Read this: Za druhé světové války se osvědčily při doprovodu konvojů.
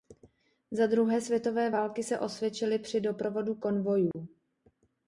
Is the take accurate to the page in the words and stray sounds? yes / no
no